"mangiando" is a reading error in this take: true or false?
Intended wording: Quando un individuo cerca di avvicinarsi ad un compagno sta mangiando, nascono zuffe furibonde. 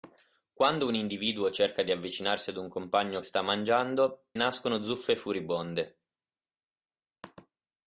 false